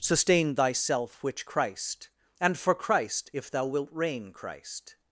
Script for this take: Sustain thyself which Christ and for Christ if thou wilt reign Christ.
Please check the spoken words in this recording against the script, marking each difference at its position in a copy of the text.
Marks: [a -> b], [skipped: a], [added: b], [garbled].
Sustain thyself which Christ and for Christ if thou wilt reign Christ.